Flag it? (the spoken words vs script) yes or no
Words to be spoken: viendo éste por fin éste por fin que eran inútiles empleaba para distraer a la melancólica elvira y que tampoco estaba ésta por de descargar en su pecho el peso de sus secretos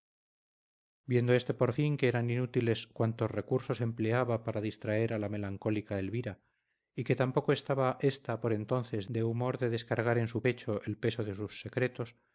yes